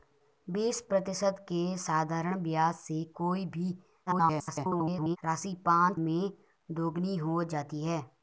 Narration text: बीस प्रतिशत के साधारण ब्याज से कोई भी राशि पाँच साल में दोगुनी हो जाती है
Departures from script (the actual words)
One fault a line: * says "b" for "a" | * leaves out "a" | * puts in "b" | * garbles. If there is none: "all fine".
* garbles
* leaves out "साल"